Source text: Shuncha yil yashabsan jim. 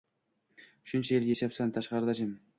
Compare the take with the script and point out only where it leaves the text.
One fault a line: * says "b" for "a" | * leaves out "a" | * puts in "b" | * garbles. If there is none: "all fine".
* puts in "tashqarida"